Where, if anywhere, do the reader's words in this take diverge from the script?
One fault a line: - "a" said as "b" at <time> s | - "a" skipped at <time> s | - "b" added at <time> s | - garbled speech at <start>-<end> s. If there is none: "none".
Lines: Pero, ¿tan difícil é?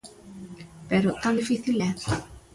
none